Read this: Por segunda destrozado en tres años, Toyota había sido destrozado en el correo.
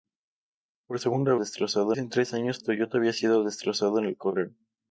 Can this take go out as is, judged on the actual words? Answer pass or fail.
pass